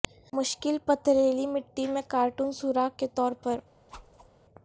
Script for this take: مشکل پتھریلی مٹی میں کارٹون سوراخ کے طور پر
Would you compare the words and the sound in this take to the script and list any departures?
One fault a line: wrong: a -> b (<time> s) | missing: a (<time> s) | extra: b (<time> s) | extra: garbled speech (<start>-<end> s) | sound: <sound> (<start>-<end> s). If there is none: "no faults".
sound: whoosh (3.9-4.3 s)